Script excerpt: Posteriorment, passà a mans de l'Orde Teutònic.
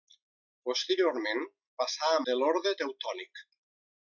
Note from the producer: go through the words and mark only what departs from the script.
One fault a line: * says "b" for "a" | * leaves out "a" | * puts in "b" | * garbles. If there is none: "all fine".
* leaves out "mans"